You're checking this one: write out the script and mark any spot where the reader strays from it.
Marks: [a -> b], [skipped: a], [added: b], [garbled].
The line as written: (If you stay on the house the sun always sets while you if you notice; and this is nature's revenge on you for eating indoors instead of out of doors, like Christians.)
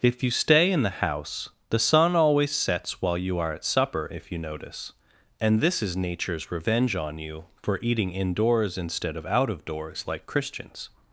(If you stay [on -> in] the house the sun always sets while you [added: are at supper] if you notice; and this is nature's revenge on you for eating indoors instead of out of doors, like Christians.)